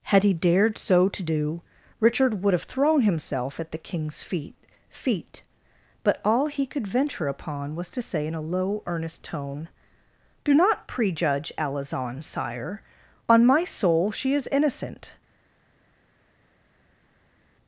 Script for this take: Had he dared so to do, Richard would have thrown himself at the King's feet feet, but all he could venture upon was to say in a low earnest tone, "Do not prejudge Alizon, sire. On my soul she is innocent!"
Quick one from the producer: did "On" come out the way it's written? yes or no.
yes